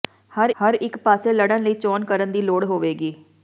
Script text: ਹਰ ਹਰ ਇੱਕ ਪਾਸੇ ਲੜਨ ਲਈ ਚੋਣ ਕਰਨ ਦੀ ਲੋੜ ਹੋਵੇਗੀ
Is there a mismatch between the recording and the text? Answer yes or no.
no